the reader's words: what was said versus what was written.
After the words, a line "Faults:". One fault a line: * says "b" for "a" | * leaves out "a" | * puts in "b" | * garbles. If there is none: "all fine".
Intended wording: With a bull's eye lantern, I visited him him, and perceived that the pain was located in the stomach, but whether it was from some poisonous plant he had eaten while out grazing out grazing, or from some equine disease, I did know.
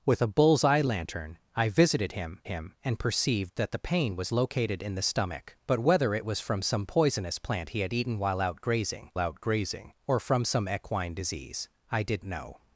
With a bull's eye lantern, I visited him him, and perceived that the pain was located in the stomach, but whether it was from some poisonous plant he had eaten while out grazing out grazing, or from some equine disease, I did know.
Faults:
all fine